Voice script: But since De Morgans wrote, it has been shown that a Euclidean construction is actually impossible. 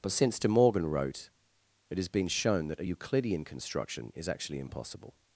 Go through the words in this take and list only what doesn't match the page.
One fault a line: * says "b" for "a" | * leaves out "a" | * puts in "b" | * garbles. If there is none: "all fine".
* says "Morgan" for "Morgans"